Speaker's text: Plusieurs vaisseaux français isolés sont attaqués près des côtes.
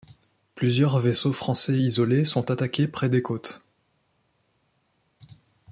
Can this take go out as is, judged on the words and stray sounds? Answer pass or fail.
pass